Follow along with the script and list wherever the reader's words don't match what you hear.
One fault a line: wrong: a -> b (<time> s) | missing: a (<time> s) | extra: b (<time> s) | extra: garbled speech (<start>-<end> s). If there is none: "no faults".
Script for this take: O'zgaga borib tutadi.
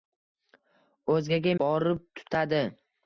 no faults